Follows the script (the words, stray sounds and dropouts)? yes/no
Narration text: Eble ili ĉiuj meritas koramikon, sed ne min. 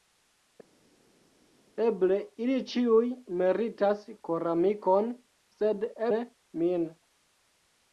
yes